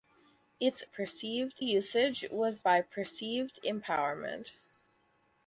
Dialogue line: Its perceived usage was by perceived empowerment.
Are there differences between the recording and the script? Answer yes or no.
no